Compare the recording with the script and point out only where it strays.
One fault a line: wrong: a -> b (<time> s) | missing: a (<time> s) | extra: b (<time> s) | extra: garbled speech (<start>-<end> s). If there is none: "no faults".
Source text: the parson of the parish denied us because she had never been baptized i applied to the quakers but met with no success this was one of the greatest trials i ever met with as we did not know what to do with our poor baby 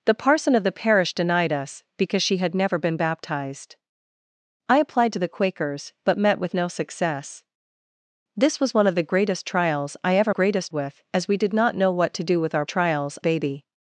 wrong: met -> greatest (10.3 s)
wrong: poor -> trials (12.7 s)